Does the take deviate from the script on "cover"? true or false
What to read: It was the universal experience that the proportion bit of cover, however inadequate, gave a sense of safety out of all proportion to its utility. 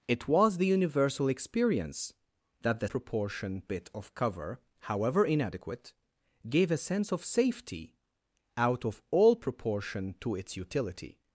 false